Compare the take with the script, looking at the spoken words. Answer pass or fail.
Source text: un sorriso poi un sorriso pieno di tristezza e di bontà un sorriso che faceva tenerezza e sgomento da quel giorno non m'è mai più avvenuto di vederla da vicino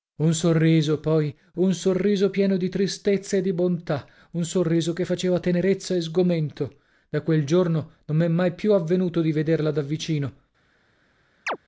pass